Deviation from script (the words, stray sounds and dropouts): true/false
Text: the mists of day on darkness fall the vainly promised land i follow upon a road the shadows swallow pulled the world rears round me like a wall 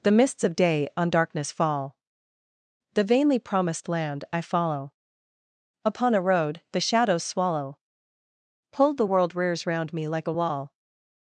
false